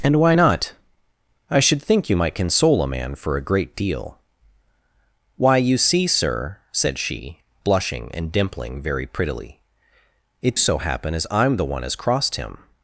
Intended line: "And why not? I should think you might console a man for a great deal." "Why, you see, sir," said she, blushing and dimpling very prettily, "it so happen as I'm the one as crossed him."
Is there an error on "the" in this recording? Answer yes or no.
no